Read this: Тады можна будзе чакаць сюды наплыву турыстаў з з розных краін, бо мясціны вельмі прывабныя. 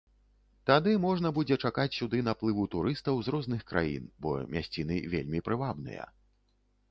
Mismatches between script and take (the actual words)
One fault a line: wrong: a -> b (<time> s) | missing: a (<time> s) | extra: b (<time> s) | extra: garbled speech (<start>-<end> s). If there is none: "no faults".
missing: з (3.3 s)